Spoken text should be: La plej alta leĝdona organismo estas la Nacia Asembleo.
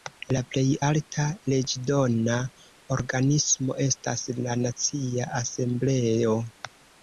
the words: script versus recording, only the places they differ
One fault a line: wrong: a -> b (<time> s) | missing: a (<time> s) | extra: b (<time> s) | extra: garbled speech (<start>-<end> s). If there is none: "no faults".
no faults